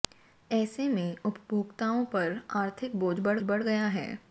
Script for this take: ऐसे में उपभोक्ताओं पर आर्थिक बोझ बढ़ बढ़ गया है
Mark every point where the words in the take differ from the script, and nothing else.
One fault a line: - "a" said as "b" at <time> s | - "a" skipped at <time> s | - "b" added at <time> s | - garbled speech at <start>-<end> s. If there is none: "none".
none